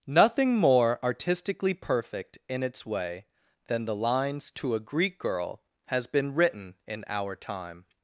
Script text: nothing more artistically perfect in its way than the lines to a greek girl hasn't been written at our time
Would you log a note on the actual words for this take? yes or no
yes